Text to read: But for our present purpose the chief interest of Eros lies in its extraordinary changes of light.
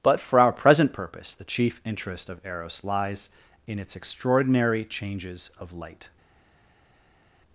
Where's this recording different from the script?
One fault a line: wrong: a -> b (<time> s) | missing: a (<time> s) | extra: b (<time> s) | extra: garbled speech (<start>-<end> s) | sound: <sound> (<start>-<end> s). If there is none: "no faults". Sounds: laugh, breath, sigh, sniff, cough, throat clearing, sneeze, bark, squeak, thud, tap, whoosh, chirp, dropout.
no faults